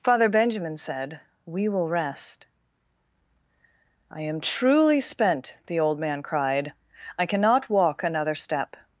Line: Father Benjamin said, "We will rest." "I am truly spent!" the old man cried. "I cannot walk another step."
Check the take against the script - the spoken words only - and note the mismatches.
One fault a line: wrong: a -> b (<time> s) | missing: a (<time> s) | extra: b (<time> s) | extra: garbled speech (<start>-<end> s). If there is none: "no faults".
no faults